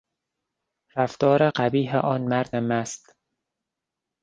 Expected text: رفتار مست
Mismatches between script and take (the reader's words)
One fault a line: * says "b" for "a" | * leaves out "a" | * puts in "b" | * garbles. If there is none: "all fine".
* puts in "قبیح آن مرد"